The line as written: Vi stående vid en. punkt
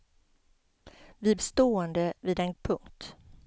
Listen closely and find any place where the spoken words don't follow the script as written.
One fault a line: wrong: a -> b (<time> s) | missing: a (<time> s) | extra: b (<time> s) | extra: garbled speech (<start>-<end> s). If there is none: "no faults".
no faults